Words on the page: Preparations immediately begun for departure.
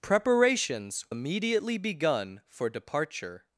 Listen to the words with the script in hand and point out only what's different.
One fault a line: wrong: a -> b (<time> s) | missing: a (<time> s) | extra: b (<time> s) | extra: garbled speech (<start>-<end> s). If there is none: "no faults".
no faults